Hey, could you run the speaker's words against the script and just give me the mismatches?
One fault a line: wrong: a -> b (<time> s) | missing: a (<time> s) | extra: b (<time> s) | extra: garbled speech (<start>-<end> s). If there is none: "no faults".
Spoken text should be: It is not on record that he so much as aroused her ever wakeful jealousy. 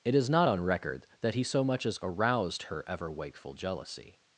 no faults